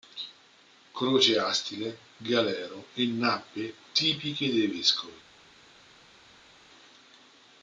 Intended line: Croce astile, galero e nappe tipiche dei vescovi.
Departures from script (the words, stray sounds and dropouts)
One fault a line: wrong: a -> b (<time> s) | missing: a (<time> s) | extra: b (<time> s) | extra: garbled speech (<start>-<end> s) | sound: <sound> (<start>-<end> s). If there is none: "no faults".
no faults